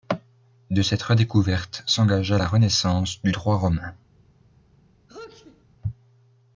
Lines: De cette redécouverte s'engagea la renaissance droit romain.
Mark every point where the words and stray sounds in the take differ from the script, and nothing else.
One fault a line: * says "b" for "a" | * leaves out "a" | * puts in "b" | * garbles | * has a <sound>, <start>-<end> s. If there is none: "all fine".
* puts in "du"
* has a sneeze, 5.1-5.6 s